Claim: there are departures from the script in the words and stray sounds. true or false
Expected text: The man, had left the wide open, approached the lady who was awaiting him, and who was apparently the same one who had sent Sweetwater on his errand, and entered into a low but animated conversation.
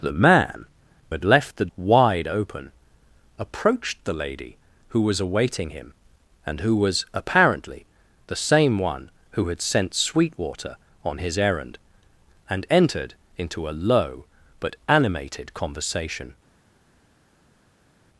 false